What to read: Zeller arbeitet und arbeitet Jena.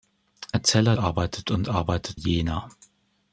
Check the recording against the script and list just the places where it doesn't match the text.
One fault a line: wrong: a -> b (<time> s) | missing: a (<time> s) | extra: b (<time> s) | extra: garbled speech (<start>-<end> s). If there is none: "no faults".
no faults